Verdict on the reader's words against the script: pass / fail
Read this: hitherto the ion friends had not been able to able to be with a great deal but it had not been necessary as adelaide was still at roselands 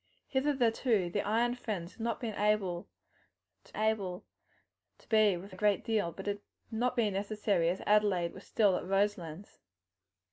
pass